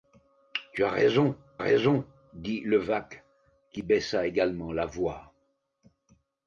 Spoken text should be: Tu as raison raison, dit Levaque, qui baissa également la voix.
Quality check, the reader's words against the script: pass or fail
pass